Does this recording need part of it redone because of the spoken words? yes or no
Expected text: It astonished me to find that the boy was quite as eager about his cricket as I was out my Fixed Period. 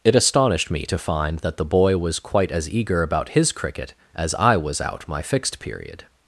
no